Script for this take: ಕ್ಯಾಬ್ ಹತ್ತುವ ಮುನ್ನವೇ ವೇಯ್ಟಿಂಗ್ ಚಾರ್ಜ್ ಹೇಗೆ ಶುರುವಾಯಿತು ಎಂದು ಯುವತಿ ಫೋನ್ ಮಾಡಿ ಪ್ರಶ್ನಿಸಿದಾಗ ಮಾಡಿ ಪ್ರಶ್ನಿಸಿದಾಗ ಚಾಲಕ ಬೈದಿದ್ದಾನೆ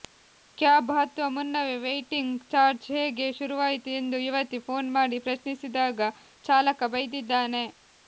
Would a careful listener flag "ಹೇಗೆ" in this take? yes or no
no